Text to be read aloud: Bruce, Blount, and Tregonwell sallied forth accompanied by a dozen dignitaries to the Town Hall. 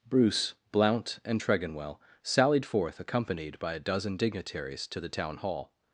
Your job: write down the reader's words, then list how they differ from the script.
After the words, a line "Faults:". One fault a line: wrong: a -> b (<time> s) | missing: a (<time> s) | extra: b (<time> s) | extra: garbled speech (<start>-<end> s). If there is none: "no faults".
Bruce, Blount, and Tregonwell sallied forth accompanied by a dozen dignitaries to the Town Hall.
Faults:
no faults